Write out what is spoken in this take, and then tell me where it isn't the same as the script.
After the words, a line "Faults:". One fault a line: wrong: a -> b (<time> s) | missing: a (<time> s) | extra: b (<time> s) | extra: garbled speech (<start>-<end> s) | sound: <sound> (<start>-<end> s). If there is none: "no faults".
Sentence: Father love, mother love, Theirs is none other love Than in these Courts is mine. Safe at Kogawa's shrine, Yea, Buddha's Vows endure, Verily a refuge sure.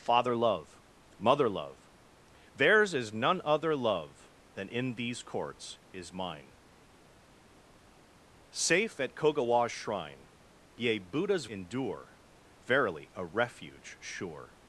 Father love, mother love, Theirs is none other love Than in these Courts is mine. Safe at Kogawa's shrine, Yea, Buddha's Endure, Verily a refuge sure.
Faults:
missing: Vows (11.5 s)